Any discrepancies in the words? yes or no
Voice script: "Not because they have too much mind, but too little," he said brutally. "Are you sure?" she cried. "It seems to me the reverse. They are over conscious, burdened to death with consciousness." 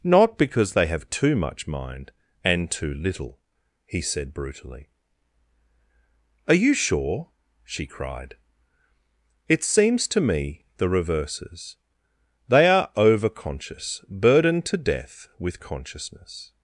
yes